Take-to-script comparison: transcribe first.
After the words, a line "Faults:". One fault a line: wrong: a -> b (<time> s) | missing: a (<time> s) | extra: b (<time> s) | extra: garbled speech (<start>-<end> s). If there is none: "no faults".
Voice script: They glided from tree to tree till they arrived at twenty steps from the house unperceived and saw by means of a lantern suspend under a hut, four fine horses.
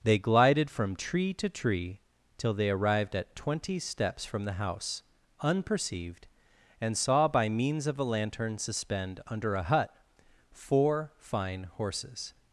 They glided from tree to tree till they arrived at twenty steps from the house unperceived and saw by means of a lantern suspend under a hut, four fine horses.
Faults:
no faults